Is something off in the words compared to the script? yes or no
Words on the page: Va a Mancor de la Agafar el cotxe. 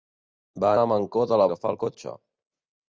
no